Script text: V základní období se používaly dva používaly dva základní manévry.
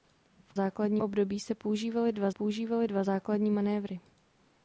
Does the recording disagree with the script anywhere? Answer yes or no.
no